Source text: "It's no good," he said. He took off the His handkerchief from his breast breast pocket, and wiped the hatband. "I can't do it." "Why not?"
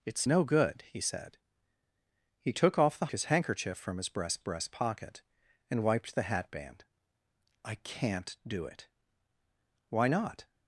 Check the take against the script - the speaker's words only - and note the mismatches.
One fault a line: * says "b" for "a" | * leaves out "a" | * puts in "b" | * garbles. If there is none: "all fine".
all fine